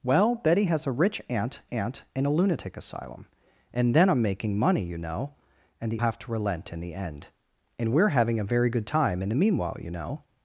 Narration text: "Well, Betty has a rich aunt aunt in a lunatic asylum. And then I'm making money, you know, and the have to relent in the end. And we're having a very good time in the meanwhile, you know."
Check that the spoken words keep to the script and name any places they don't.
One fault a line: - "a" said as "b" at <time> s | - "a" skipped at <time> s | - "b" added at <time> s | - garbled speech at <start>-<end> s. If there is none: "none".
none